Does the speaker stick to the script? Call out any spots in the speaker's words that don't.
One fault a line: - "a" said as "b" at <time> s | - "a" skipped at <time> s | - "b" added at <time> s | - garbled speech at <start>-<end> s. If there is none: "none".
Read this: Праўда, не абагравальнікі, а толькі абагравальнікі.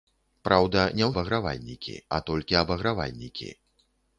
none